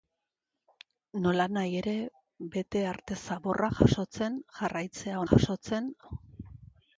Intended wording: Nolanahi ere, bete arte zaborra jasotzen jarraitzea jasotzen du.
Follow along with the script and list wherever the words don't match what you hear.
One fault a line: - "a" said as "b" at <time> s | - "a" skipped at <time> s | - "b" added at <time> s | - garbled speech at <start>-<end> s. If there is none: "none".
none